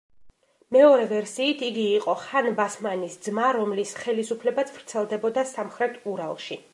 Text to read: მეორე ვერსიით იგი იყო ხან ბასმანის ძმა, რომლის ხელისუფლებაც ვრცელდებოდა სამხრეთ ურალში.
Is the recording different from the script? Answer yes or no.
no